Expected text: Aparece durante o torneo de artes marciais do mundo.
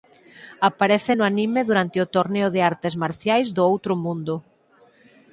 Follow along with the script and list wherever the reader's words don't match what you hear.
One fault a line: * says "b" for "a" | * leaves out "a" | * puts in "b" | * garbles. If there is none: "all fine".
* puts in "no anime"
* puts in "outro"